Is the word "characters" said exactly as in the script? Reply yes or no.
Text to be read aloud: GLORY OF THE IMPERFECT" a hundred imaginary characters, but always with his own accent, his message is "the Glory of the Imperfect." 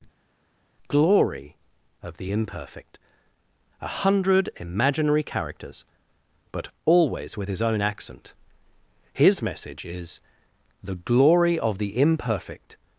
yes